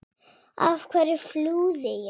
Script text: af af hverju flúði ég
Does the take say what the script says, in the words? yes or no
no